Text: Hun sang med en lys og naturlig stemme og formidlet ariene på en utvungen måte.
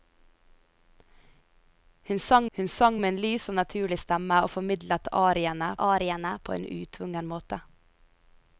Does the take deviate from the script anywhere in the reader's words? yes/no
yes